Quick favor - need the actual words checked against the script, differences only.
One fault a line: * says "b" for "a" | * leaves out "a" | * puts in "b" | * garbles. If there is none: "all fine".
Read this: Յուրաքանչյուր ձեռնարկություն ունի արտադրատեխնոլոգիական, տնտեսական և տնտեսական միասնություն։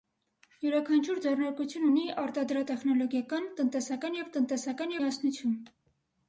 all fine